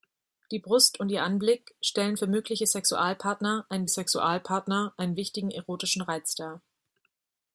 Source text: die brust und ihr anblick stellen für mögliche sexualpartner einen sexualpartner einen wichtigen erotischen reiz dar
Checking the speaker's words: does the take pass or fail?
pass